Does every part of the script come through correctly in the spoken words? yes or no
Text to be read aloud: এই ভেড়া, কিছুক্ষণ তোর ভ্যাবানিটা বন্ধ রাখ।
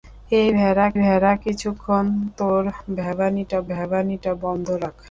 no